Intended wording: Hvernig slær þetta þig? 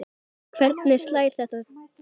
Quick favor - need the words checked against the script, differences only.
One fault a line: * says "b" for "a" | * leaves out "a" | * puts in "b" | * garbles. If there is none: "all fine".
all fine